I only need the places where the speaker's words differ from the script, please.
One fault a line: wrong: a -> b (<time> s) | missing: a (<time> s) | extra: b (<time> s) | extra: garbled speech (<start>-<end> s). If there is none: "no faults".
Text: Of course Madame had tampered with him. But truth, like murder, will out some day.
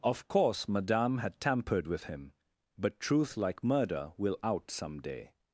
no faults